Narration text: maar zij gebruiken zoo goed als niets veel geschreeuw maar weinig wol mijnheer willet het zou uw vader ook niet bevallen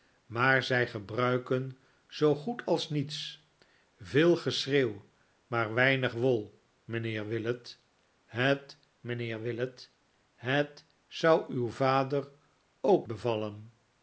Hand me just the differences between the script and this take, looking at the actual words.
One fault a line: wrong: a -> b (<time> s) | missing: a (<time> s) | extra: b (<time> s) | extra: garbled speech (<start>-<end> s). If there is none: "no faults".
extra: mijnheer willet het (9.0 s)
missing: niet (13.1 s)